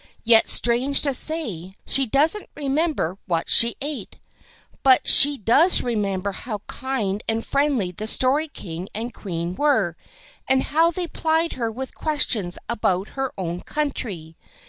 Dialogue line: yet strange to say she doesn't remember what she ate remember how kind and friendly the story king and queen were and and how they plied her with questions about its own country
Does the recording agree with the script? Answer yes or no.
no